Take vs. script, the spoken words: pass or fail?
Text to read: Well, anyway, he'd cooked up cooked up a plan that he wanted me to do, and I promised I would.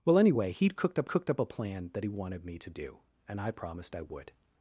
pass